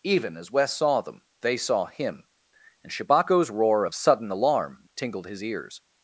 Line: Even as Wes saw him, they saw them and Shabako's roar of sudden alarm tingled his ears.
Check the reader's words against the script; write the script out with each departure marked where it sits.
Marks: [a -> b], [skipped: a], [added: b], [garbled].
Even as Wes saw [him, -> them] they saw [them -> him] and Shabako's roar of sudden alarm tingled his ears.